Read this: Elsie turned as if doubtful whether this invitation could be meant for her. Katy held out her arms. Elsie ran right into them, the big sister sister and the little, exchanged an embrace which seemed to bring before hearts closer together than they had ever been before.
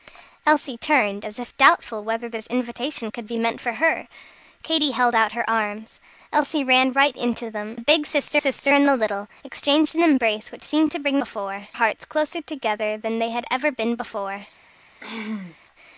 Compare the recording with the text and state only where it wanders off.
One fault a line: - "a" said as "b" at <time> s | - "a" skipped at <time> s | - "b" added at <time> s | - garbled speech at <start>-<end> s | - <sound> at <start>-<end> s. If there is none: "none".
- throat clearing at 15.0-15.6 s